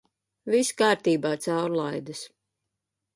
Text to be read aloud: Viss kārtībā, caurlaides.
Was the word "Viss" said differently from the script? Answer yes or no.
no